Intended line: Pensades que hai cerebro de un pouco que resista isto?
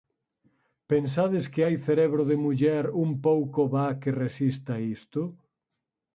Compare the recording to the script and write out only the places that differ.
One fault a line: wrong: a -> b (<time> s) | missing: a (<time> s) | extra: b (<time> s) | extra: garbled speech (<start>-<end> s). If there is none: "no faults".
extra: muller (2.4 s)
extra: va (3.7 s)